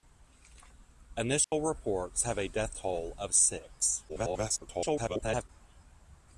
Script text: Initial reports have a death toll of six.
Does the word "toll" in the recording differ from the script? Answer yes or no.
no